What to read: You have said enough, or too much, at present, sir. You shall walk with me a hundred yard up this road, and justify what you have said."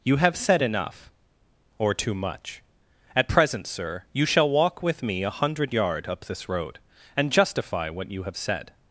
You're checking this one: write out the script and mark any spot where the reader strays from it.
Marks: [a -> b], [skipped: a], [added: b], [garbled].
You have said enough, or too much, at present, sir. You shall walk with me a hundred yard up this road, and justify what you have said."